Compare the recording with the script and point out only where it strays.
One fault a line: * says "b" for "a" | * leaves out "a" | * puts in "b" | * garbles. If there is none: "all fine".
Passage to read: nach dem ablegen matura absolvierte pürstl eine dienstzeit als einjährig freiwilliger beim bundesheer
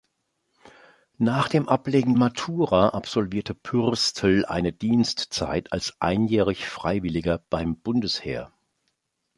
all fine